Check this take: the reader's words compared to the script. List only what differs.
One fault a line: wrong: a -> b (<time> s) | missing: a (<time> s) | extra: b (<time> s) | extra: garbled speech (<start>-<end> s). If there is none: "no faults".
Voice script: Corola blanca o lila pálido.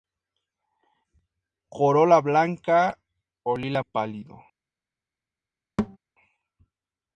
no faults